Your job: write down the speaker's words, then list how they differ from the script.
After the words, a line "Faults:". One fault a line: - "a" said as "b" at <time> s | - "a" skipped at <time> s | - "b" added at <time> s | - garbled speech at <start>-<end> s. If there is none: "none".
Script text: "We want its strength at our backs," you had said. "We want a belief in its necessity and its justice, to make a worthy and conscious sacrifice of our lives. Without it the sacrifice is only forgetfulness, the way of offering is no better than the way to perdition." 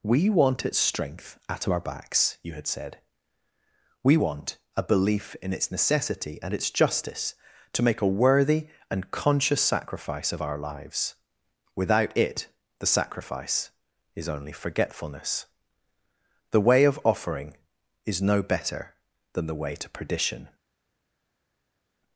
"We want its strength at our backs," you had said. "We want a belief in its necessity and its justice, to make a worthy and conscious sacrifice of our lives. Without it the sacrifice is only forgetfulness, the way of offering is no better than the way to perdition."
Faults:
none